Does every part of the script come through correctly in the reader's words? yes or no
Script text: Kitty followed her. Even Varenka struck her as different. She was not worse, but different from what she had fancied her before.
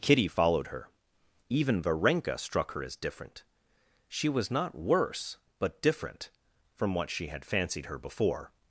yes